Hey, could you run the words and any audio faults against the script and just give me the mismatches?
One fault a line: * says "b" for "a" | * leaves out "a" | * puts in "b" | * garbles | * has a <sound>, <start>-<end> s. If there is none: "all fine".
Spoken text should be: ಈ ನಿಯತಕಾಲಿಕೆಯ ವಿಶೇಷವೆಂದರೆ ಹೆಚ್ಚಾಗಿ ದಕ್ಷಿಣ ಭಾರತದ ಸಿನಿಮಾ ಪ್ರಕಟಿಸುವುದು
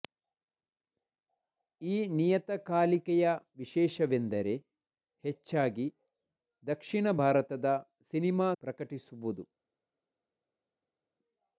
all fine